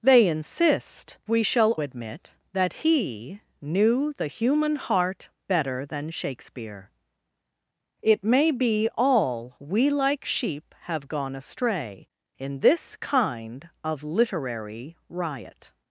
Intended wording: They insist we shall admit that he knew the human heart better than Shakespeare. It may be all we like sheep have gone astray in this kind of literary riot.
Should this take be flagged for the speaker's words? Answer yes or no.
no